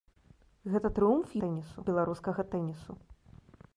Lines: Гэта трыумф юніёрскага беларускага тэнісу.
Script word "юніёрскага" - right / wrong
wrong